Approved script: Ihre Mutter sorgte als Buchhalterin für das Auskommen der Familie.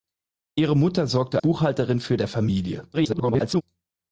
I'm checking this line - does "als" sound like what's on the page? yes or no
no